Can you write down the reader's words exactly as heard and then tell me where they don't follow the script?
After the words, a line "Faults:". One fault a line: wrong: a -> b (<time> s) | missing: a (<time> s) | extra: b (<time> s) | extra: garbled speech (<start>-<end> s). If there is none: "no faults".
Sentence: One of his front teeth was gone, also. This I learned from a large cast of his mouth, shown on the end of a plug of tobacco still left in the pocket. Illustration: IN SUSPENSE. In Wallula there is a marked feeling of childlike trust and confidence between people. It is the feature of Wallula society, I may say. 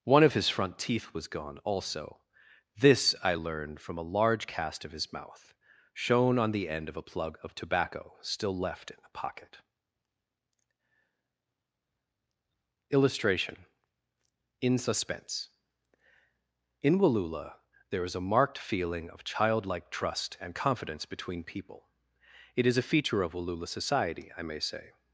One of his front teeth was gone, also. This I learned from a large cast of his mouth, shown on the end of a plug of tobacco still left in the pocket. Illustration: IN SUSPENSE. In Wallula there is a marked feeling of childlike trust and confidence between people. It is a feature of Wallula society, I may say.
Faults:
wrong: the -> a (22.8 s)